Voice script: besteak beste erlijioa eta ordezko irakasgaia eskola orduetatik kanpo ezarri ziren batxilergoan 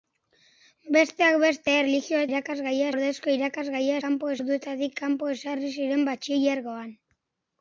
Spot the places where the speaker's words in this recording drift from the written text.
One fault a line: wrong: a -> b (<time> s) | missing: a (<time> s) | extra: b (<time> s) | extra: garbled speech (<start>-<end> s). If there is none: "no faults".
wrong: eta -> irakasgaia (2.3 s)
wrong: eskola -> kanpo (4.1 s)